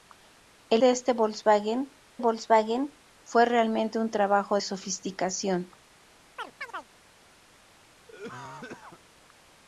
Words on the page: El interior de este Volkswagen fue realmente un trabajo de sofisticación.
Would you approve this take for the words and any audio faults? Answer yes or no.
no